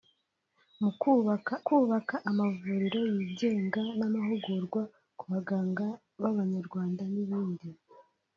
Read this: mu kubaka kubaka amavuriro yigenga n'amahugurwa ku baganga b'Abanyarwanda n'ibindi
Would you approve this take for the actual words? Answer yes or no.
yes